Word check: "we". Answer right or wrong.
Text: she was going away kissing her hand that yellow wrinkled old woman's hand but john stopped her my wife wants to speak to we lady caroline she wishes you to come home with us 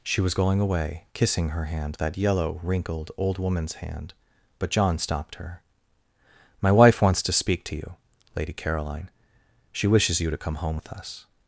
wrong